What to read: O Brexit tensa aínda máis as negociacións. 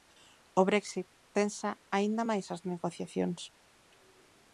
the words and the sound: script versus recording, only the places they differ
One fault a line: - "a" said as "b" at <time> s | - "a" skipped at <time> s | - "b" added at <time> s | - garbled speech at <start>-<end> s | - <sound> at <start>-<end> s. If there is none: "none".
none